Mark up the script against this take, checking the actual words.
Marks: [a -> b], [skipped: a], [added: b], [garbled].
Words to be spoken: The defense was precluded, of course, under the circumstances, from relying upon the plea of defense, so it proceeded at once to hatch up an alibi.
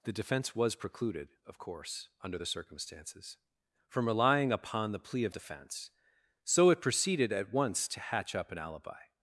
The defense was precluded, of course, under the circumstances, from relying upon the plea of defense, so it proceeded at once to hatch up an alibi.